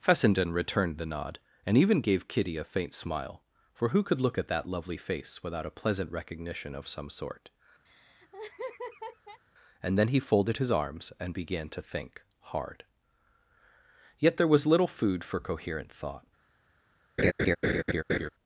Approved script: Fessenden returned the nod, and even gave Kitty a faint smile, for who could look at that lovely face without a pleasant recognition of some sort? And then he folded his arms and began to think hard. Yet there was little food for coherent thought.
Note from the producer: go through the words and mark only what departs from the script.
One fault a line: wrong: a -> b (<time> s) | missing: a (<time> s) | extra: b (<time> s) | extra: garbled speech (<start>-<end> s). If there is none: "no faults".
no faults